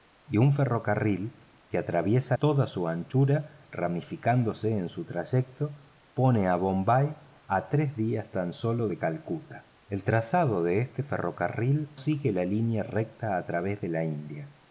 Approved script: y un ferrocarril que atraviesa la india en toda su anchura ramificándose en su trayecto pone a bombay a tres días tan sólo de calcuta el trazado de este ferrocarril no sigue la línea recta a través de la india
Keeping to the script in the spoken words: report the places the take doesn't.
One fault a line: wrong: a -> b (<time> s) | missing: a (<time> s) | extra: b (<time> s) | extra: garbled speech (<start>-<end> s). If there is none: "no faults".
missing: la india en (2.4 s)
missing: no (12.0 s)